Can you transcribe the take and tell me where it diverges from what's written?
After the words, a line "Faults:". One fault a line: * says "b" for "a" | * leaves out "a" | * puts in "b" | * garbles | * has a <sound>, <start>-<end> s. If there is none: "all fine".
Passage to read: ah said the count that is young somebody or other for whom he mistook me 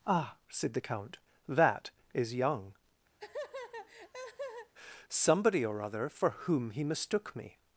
ah said the count that is young somebody or other for whom he mistook me
Faults:
* has a laugh, 3.2-4.7 s